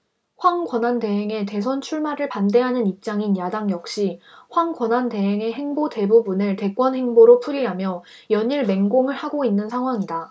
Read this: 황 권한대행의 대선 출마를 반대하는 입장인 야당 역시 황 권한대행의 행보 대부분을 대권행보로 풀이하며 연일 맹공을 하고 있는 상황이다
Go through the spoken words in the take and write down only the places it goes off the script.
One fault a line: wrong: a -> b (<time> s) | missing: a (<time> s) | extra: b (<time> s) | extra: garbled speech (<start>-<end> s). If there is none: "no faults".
no faults